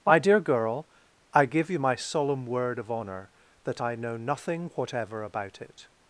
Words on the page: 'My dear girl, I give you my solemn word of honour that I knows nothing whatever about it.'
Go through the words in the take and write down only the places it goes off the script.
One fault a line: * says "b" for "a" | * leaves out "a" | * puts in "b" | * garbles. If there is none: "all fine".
* says "know" for "knows"